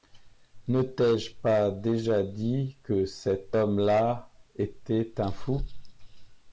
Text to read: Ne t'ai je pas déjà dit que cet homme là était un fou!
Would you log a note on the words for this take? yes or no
no